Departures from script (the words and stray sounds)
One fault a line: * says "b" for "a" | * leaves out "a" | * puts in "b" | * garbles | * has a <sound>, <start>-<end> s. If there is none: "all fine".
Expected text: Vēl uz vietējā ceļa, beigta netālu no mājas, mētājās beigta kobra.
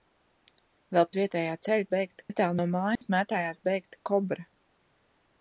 * has a dropout, 3.0-3.0 s